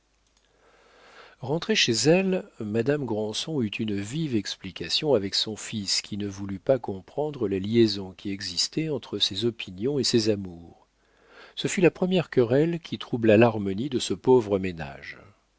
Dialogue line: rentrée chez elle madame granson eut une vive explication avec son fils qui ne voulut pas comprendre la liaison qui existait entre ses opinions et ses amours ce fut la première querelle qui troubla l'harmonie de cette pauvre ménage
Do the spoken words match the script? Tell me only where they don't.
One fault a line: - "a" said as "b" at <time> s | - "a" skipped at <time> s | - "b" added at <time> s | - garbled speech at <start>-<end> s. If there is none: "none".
- "cette" said as "ce" at 14.0 s